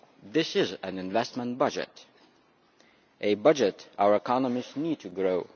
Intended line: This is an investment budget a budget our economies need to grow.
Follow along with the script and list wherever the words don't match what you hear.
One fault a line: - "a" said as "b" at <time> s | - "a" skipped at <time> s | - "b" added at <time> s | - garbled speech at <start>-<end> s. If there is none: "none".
none